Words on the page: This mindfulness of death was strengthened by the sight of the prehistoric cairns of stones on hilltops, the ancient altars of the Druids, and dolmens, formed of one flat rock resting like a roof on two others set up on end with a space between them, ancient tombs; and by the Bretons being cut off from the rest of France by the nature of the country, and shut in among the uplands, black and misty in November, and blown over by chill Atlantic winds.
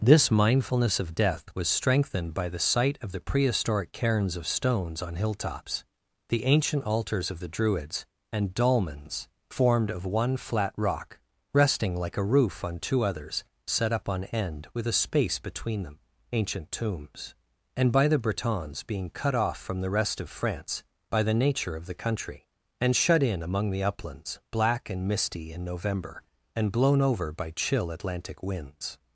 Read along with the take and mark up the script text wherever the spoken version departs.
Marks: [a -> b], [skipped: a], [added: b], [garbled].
This mindfulness of death was strengthened by the sight of the prehistoric cairns of stones on hilltops, the ancient altars of the Druids, and dolmens, formed of one flat rock resting like a roof on two others set up on end with a space between them, ancient tombs; and by the Bretons being cut off from the rest of France by the nature of the country, and shut in among the uplands, black and misty in November, and blown over by chill Atlantic winds.